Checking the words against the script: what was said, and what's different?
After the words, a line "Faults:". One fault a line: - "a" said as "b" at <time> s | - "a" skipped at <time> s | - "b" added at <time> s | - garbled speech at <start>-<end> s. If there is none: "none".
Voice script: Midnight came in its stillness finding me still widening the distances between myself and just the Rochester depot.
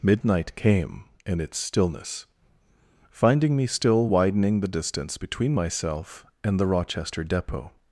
Midnight came in its stillness finding me still widening the distance between myself and the Rochester depot.
Faults:
- "distances" said as "distance" at 4.7 s
- "just" skipped at 6.6 s